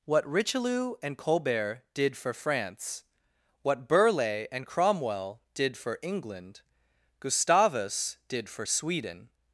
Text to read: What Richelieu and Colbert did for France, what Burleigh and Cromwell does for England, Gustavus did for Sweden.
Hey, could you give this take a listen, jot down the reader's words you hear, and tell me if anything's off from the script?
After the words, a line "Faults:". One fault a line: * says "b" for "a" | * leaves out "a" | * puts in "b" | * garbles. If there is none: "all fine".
What Richelieu and Colbert did for France, what Burleigh and Cromwell did for England, Gustavus did for Sweden.
Faults:
* says "did" for "does"